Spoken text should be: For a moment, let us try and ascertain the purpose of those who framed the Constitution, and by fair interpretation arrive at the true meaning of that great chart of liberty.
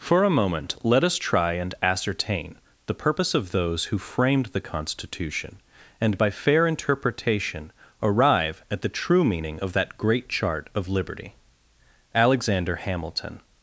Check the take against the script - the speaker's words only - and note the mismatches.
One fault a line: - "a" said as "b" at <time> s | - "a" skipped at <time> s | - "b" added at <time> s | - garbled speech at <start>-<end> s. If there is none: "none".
- "Alexander Hamilton" added at 12.1 s